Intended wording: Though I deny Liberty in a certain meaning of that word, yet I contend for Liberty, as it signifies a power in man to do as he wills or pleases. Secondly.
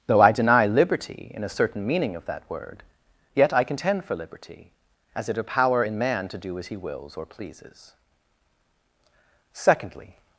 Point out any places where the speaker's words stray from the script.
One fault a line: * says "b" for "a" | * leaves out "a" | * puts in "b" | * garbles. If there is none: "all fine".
* leaves out "signifies"